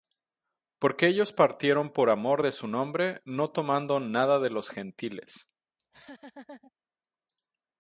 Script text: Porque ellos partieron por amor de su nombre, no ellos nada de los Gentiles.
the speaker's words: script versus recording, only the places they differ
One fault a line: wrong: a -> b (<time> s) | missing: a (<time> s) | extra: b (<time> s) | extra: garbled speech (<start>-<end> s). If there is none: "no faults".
wrong: ellos -> tomando (3.5 s)